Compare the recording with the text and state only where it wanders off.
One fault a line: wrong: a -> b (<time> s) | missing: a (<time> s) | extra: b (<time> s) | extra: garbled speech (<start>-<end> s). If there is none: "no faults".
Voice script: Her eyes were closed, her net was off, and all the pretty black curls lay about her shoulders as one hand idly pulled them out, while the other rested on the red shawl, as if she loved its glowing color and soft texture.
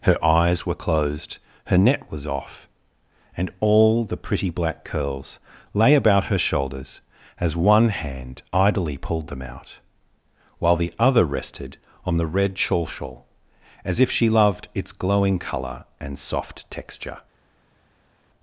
extra: shawl (12.9 s)